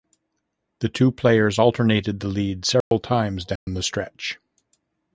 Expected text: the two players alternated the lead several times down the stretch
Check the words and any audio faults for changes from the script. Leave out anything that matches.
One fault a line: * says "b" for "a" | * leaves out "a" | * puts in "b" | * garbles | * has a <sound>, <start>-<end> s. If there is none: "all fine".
* has a dropout, 2.8-2.9 s
* has a dropout, 3.6-3.7 s